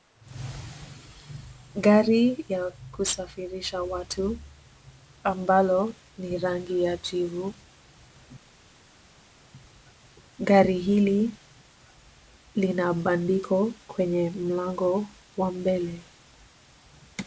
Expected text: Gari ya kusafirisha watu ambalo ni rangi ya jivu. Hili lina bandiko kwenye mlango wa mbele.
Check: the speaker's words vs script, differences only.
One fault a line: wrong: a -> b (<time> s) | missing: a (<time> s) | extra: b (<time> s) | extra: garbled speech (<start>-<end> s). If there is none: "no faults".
extra: Gari (10.4 s)